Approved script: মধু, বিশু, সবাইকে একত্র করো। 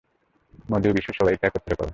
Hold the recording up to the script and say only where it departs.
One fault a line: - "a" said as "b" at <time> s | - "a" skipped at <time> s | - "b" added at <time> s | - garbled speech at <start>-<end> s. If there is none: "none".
none